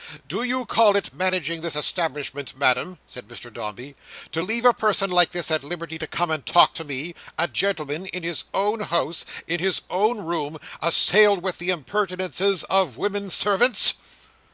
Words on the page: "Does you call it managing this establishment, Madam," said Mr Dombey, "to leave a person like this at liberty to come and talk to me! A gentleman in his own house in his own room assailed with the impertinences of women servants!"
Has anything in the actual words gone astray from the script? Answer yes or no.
yes